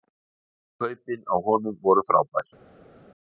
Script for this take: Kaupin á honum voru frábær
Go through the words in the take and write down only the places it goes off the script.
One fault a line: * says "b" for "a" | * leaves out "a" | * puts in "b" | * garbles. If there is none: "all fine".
all fine